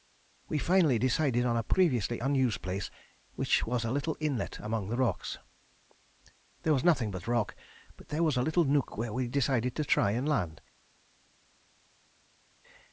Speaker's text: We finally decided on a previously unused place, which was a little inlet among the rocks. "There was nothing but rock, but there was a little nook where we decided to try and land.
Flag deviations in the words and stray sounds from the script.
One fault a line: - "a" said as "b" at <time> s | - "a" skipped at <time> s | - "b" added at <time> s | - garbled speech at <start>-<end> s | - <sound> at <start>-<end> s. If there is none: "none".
none